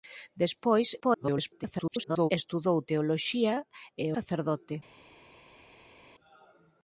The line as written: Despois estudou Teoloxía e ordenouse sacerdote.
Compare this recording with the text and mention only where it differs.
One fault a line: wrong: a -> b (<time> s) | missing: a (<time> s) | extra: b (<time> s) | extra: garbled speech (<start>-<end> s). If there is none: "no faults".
extra: garbled speech (1.0-2.3 s)
missing: ordenouse (4.1 s)